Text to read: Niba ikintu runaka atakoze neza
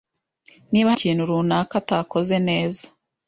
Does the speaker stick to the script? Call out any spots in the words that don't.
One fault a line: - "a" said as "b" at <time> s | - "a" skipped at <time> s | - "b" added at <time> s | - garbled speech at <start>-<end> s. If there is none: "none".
none